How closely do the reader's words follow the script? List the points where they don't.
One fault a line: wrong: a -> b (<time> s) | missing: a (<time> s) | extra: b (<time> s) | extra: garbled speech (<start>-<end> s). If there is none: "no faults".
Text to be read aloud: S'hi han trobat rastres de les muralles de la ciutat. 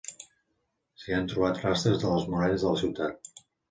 no faults